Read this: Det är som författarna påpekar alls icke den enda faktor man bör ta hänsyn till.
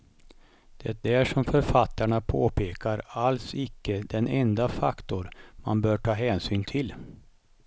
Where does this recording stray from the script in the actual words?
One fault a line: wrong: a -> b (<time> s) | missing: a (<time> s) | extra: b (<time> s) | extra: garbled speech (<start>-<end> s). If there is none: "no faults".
no faults